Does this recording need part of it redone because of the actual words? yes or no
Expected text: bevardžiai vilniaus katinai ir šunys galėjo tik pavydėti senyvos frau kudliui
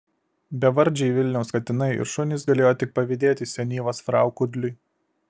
no